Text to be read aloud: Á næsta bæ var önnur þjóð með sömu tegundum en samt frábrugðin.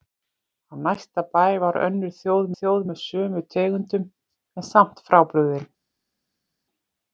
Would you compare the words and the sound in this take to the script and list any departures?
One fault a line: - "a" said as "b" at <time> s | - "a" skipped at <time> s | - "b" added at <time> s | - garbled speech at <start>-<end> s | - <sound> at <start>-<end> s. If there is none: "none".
- "þjóð" added at 2.6 s